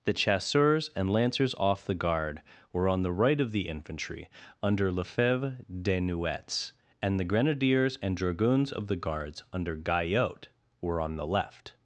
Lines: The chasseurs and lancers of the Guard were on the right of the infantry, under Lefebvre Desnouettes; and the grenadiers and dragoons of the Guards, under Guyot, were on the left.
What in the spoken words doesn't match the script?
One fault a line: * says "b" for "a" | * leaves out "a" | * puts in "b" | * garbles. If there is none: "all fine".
* says "off" for "of"